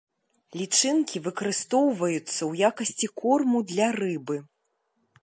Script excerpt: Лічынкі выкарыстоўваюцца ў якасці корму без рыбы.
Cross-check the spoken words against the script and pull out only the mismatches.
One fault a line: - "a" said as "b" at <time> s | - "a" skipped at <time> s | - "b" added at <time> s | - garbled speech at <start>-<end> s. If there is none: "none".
- "без" said as "для" at 3.7 s